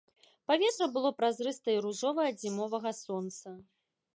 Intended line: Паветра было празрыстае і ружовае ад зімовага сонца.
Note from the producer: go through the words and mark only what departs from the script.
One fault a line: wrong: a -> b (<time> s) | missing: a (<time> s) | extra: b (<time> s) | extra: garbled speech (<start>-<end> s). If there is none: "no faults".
no faults